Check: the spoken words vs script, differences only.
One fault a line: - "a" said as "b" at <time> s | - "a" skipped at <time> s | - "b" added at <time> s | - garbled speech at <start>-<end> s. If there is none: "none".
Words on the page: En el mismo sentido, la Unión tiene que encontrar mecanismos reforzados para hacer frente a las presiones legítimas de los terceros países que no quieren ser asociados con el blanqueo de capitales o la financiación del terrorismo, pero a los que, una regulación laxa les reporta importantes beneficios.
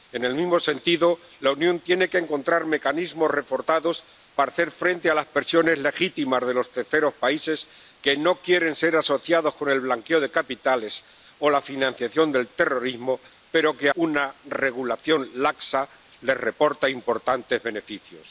none